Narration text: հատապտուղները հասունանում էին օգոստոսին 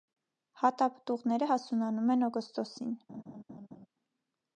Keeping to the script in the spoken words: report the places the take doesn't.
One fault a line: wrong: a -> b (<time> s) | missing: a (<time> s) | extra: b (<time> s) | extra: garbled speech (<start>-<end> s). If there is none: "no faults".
wrong: էին -> են (2.2 s)